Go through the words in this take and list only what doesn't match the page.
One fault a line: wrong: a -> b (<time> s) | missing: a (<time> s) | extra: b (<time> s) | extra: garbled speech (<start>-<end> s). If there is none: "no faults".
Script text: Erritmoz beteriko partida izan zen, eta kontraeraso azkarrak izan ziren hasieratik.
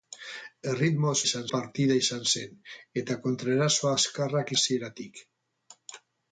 wrong: beteriko -> izan (1.2 s)
missing: izan ziren (4.5 s)